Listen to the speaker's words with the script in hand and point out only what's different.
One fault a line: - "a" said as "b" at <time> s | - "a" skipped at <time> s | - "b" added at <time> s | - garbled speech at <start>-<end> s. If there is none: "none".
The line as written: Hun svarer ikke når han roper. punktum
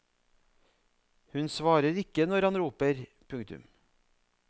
none